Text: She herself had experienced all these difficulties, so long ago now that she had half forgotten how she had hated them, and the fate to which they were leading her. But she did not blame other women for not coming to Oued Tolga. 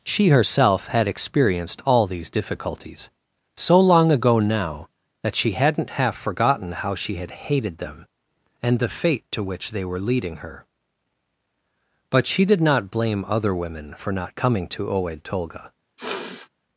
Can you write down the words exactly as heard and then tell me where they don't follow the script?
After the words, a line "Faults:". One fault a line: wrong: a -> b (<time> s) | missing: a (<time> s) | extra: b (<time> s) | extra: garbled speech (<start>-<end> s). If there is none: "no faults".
She herself had experienced all these difficulties, so long ago now that she hadn't half forgotten how she had hated them, and the fate to which they were leading her. But she did not blame other women for not coming to Oued Tolga.
Faults:
wrong: had -> hadn't (5.5 s)